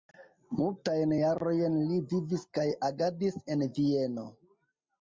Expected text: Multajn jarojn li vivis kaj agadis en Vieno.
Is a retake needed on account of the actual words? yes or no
no